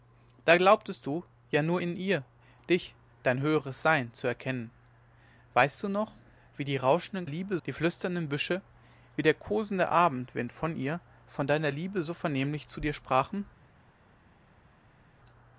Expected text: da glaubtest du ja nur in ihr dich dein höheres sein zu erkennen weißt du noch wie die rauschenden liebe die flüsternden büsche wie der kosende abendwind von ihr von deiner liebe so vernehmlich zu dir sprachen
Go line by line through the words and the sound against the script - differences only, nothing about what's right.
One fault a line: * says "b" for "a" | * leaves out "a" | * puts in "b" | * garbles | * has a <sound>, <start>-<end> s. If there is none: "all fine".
all fine